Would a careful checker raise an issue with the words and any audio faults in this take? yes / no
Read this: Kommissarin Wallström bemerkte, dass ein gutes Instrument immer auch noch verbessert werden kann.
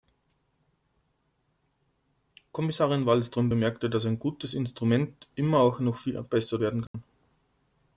yes